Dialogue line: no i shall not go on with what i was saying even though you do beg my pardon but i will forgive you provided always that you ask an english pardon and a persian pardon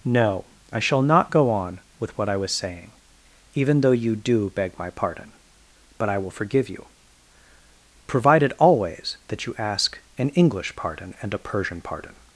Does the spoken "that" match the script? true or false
true